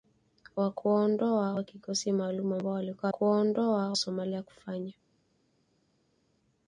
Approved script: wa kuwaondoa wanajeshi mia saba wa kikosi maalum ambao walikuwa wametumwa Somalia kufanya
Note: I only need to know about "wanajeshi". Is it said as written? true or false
false